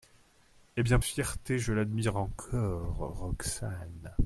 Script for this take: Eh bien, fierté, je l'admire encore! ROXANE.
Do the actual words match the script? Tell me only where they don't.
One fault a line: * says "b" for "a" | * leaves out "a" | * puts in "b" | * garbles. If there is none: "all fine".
all fine